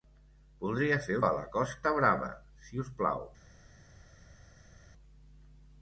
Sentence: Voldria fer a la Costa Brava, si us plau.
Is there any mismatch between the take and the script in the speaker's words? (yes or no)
no